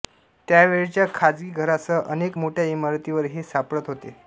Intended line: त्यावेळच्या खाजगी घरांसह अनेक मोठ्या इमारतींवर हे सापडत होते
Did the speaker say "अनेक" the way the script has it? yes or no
yes